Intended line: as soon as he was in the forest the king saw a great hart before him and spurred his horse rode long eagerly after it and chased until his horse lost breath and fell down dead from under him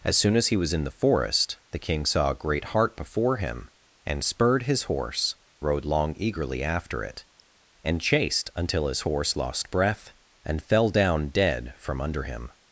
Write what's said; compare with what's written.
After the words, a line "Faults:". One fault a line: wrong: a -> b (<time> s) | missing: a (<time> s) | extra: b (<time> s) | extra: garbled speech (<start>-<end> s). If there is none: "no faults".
as soon as he was in the forest the king saw a great hart before him and spurred his horse rode long eagerly after it and chased until his horse lost breath and fell down dead from under him
Faults:
no faults